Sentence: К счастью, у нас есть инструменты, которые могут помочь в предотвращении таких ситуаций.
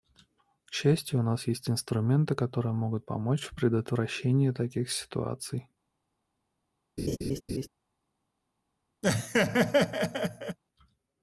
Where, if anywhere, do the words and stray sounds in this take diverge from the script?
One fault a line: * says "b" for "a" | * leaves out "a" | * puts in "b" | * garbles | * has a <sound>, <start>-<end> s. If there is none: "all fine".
* has a laugh, 7.0-7.7 s
* has a laugh, 9.0-10.6 s